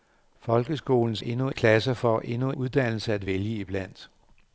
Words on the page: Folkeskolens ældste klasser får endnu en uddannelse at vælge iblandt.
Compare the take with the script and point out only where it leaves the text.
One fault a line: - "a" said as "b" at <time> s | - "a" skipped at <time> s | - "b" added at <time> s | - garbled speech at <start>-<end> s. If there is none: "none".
- "ældste" said as "endnu" at 1.2 s
- "en" skipped at 2.5 s